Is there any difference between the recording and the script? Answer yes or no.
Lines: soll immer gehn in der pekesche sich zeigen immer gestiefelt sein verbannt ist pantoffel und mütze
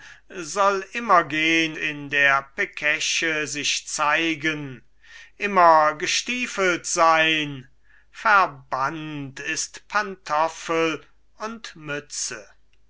no